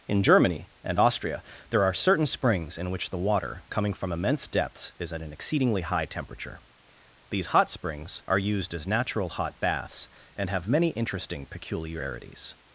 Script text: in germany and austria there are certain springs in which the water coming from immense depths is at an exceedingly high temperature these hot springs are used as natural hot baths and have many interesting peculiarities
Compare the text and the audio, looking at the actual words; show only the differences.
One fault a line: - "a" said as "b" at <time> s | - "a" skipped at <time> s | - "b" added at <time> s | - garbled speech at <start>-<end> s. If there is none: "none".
none